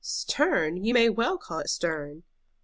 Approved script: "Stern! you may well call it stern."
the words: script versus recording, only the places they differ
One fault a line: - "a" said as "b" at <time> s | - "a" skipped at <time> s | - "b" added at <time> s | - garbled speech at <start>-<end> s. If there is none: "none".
none